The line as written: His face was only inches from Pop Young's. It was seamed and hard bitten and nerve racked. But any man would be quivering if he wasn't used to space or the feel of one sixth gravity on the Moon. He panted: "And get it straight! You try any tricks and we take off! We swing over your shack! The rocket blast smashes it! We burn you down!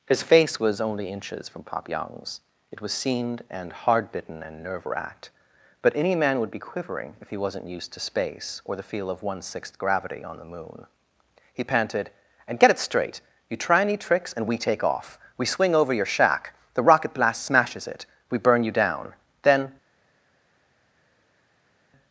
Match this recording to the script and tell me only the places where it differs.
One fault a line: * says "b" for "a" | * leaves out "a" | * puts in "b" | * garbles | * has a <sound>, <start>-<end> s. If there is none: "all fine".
* puts in "Then"